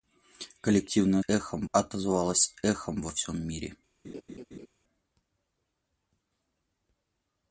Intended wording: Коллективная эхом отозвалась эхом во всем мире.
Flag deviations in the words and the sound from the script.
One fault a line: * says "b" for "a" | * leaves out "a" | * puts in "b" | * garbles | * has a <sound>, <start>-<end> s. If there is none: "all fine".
* has a laugh, 4.0-4.7 s